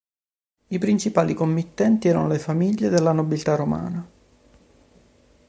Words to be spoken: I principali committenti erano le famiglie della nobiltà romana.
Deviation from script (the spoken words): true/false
false